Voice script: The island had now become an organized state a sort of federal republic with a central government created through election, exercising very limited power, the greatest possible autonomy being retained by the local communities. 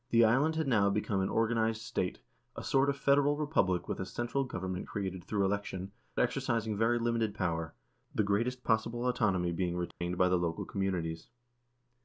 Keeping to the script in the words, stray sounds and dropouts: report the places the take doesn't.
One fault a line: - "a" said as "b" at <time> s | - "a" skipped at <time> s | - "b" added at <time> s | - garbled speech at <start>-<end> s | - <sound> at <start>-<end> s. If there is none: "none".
- dropout at 9.9-10.0 s